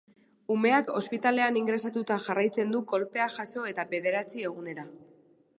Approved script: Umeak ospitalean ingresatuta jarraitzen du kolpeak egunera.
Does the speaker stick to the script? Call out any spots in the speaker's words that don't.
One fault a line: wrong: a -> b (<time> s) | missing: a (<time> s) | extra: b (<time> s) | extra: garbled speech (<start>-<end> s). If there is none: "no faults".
extra: jaso eta bederatzi (3.4 s)